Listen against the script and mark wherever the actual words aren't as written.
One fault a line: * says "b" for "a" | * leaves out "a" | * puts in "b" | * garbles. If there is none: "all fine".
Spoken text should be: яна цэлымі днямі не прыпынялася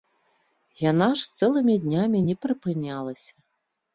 * puts in "ж"